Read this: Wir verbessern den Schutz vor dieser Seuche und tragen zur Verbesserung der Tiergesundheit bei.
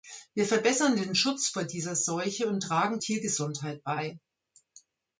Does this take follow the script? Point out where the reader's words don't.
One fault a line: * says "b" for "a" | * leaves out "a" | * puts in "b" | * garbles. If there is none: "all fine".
* leaves out "zur Verbesserung der"